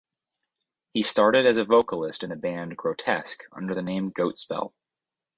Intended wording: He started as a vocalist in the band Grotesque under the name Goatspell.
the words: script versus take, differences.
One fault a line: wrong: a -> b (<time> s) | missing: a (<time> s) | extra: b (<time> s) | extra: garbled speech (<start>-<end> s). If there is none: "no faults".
no faults